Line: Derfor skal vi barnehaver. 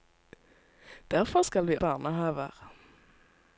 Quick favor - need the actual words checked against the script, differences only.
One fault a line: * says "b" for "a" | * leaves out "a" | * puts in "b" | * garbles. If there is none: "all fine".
all fine